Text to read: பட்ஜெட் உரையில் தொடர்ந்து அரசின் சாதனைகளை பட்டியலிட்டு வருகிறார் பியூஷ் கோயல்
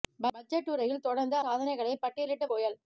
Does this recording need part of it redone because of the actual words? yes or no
yes